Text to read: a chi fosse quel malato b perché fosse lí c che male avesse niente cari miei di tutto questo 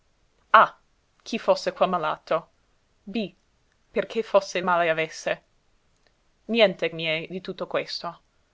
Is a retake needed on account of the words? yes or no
yes